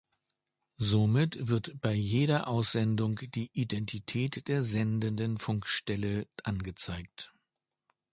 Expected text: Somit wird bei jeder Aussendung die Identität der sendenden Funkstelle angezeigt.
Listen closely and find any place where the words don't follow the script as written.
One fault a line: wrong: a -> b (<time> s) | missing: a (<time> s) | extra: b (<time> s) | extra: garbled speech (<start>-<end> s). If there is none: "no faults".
no faults